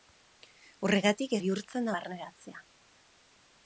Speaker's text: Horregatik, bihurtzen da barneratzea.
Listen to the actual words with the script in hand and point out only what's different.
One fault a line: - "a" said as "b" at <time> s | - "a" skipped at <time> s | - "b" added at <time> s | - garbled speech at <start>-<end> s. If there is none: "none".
none